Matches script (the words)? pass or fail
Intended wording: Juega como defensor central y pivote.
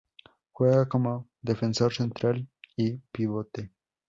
pass